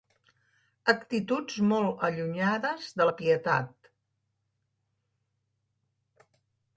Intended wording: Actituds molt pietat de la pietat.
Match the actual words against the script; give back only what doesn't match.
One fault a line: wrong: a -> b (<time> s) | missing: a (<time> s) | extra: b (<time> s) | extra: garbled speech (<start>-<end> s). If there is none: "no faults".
wrong: pietat -> allunyades (2.1 s)